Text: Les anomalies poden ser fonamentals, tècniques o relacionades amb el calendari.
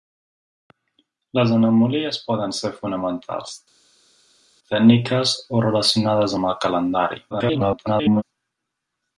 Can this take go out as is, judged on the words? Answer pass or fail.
fail